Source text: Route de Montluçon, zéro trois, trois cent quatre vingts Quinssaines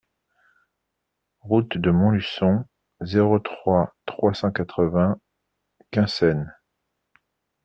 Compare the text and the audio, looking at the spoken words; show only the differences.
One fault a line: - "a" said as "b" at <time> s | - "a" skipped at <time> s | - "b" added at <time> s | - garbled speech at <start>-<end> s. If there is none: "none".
none